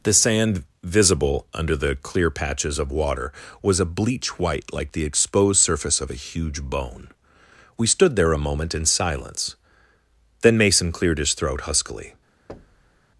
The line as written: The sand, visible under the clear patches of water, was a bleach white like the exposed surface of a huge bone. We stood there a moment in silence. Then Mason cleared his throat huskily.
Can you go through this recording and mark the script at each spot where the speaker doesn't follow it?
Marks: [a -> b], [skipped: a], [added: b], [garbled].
The sand, visible under the clear patches of water, was a bleach white like the exposed surface of a huge bone. We stood there a moment in silence. Then Mason cleared his throat huskily.